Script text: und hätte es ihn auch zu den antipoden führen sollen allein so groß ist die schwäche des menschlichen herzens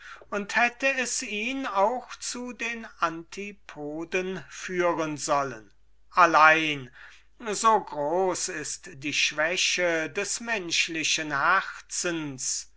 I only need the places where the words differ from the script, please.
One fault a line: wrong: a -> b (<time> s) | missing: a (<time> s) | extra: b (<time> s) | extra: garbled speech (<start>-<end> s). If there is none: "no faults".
no faults